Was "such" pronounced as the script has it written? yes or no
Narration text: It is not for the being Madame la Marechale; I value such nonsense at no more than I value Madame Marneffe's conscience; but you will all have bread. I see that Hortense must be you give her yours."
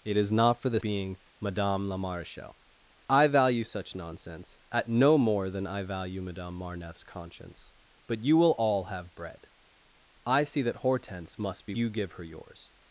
yes